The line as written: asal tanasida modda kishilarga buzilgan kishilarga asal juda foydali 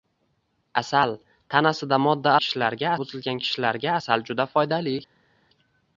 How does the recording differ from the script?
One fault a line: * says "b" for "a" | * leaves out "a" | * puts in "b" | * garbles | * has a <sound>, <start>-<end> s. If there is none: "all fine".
all fine